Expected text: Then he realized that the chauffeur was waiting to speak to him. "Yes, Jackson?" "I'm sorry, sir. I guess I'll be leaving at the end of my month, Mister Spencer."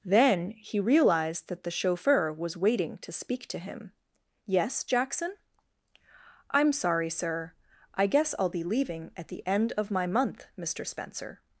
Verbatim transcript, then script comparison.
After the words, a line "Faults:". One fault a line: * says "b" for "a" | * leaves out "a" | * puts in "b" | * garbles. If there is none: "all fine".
Then he realized that the chauffeur was waiting to speak to him. "Yes, Jackson?" "I'm sorry, sir. I guess I'll be leaving at the end of my month, Mister Spencer."
Faults:
all fine